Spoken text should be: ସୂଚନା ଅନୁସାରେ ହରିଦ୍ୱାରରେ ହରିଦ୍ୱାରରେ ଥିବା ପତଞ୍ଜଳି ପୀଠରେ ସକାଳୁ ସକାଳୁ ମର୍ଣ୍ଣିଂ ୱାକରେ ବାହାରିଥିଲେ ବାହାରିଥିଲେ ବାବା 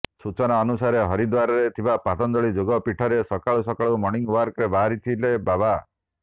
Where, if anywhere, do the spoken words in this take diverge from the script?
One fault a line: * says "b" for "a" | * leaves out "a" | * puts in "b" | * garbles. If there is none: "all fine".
* leaves out "ହରିଦ୍ୱାରରେ"
* puts in "ଯୋଗ"
* leaves out "ବାହାରିଥିଲେ"